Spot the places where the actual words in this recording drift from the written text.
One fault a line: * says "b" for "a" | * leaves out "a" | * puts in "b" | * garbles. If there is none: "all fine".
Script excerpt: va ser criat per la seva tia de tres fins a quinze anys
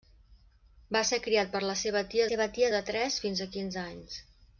* puts in "seva tia"